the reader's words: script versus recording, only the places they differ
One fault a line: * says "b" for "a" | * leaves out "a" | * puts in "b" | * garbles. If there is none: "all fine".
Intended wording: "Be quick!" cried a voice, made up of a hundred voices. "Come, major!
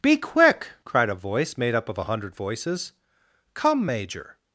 all fine